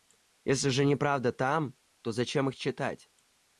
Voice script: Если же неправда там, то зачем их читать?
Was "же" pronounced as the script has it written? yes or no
yes